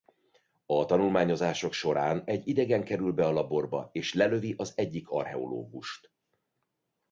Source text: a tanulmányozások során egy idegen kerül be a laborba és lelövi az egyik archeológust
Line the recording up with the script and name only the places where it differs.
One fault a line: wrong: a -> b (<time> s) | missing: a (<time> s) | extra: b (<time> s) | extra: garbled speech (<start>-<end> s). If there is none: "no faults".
no faults